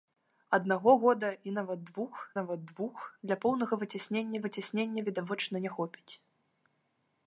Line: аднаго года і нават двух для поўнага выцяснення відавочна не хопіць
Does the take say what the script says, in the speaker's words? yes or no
no